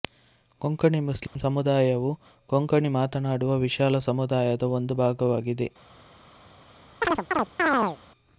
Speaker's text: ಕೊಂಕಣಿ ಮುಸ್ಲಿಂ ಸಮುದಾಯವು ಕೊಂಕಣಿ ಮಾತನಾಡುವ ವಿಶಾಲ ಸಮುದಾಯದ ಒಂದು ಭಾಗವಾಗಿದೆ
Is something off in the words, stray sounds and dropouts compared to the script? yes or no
yes